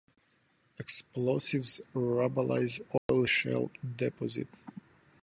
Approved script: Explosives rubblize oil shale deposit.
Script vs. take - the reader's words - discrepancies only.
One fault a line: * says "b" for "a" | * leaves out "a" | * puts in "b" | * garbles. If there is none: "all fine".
all fine